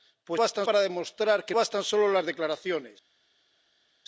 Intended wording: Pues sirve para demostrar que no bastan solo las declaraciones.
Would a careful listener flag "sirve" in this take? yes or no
yes